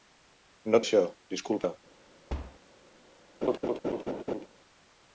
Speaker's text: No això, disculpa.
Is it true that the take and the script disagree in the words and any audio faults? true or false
true